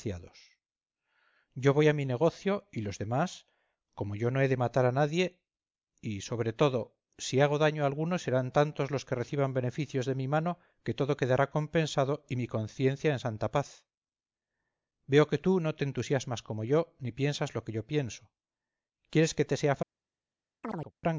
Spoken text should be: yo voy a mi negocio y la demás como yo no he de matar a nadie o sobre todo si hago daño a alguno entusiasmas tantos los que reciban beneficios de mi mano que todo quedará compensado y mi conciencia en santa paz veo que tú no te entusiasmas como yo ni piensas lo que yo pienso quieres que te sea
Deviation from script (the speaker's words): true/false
true